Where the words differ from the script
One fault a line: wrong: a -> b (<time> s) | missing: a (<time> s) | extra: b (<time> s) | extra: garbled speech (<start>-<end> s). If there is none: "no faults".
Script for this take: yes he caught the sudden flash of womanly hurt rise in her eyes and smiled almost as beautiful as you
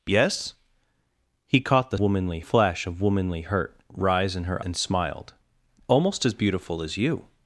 wrong: sudden -> womanly (2.0 s)
missing: eyes (4.6 s)